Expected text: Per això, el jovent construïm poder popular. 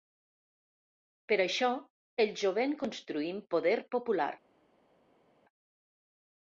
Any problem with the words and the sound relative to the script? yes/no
no